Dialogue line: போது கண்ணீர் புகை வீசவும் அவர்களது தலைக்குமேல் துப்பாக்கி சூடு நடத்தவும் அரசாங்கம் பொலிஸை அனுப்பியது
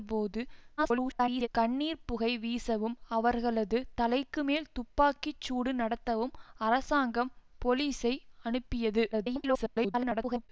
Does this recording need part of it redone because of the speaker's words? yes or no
yes